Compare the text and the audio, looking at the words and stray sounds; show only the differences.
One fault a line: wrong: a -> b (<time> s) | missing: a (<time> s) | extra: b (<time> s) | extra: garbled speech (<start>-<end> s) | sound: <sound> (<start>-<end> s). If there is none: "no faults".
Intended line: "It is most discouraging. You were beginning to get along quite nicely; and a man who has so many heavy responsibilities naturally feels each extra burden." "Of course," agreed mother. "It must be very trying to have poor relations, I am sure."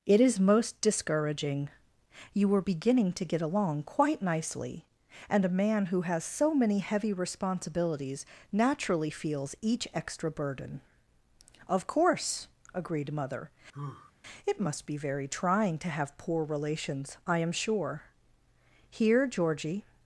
sound: sigh (13.7-14.1 s)
extra: Here Georgie (18.9 s)